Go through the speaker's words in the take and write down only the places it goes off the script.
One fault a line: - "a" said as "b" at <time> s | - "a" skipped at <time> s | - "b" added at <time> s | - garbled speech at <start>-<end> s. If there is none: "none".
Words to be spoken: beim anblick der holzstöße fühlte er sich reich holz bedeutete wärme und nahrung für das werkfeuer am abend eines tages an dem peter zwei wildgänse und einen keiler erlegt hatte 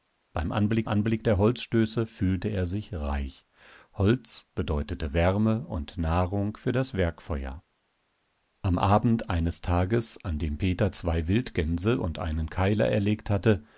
- "anblick" added at 0.9 s